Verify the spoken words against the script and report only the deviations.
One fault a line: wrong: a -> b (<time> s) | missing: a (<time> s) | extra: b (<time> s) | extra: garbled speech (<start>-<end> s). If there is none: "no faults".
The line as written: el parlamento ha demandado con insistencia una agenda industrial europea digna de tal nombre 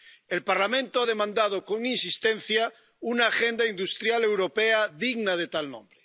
no faults